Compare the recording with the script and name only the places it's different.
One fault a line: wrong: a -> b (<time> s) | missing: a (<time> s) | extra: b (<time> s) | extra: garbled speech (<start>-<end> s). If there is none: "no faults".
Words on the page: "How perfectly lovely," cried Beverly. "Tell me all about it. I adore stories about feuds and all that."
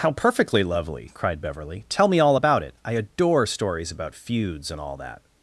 no faults